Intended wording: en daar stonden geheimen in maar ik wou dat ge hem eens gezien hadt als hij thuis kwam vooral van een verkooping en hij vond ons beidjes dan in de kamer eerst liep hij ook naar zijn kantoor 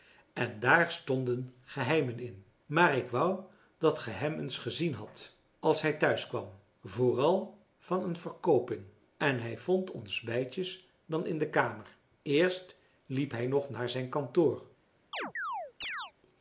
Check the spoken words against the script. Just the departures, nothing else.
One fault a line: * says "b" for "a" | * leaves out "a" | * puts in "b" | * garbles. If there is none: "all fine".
* says "nog" for "ook"